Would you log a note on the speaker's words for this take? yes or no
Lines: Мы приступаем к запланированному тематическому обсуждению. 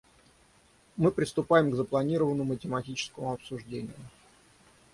no